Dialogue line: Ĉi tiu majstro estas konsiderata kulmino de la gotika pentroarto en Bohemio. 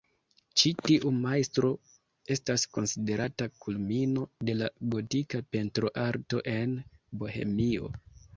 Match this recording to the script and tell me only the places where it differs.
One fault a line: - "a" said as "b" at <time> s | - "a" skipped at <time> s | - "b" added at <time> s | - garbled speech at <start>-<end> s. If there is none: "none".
none